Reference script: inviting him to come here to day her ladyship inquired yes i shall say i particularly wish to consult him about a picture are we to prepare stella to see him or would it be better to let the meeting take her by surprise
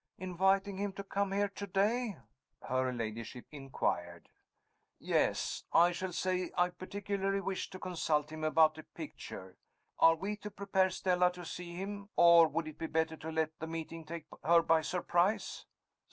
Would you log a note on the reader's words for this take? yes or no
no